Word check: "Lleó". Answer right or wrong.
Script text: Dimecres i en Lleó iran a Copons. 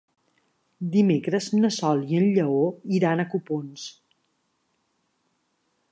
right